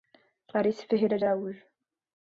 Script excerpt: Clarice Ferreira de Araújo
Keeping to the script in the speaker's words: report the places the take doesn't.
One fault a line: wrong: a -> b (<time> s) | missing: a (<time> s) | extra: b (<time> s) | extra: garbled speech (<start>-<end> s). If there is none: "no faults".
no faults